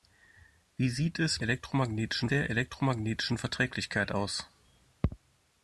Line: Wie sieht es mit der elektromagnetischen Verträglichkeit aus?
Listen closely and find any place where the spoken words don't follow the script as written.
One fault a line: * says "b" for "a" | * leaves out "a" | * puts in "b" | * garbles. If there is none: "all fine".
* says "elektromagnetischen" for "mit"